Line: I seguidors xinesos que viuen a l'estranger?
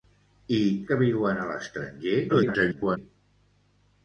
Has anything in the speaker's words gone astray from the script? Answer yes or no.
yes